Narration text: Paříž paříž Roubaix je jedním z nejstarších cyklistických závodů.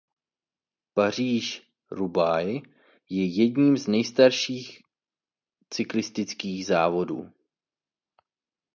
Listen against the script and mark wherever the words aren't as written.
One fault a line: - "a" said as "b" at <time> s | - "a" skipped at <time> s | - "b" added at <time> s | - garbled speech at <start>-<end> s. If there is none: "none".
- "paříž" skipped at 1.7 s